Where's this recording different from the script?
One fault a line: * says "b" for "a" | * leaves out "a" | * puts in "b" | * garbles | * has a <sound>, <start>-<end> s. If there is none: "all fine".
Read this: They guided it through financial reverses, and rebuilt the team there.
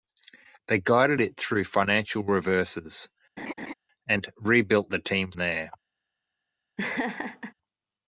* has a laugh, 3.4-3.7 s
* has a laugh, 6.8-7.5 s